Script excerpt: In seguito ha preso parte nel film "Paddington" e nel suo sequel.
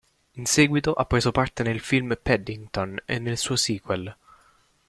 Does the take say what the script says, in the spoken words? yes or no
yes